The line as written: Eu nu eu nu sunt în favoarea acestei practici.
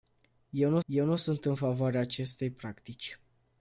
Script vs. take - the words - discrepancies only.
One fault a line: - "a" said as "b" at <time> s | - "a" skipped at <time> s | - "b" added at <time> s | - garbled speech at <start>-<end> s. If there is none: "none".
none